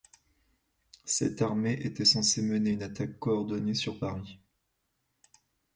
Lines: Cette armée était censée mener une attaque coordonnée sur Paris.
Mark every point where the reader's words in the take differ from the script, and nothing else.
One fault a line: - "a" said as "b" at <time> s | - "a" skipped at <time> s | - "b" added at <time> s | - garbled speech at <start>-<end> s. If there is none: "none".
none